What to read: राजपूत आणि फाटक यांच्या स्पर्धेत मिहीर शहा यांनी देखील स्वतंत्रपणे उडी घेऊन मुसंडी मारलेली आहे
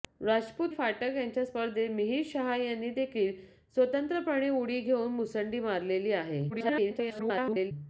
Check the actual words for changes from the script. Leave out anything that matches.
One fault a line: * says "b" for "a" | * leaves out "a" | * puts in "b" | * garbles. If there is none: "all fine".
* leaves out "आणि"
* garbles